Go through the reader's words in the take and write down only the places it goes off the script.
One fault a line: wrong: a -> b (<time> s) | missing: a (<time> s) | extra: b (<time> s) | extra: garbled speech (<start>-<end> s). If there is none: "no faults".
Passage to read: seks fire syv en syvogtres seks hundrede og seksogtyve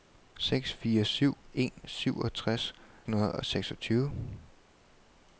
missing: seks (2.7 s)